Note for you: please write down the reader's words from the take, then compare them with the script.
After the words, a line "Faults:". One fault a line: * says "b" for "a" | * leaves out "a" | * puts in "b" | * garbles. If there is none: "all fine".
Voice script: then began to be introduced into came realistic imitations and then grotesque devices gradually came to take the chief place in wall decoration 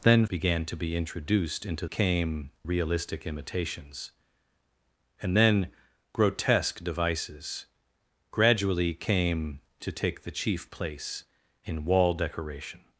then began to be introduced into came realistic imitations and then grotesque devices gradually came to take the chief place in wall decoration
Faults:
all fine